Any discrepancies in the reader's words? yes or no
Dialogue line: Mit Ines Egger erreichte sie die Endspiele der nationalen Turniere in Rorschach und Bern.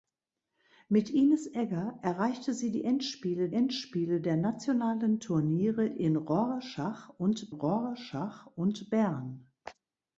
yes